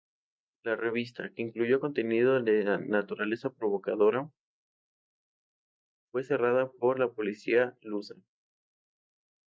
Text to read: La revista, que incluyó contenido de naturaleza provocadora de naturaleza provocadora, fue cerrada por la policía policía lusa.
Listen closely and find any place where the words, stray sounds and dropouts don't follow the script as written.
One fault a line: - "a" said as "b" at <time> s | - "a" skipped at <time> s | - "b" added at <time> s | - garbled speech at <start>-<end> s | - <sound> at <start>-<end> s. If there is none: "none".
- "de naturaleza provocadora" skipped at 4.3 s
- "policía" skipped at 7.8 s